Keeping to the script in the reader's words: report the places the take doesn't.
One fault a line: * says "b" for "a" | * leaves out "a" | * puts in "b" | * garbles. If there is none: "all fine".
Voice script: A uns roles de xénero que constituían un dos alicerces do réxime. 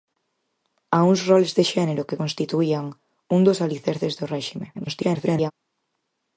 * garbles